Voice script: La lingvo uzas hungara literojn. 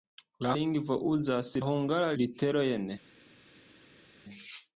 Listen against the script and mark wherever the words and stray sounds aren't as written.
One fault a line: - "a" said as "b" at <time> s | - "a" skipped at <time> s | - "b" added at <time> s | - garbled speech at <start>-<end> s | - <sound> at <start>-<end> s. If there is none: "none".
none